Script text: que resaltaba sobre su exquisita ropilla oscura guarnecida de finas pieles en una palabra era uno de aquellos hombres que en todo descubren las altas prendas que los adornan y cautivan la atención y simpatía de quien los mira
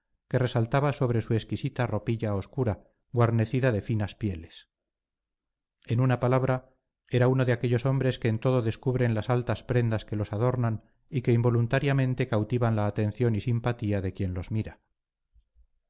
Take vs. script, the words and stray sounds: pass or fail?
fail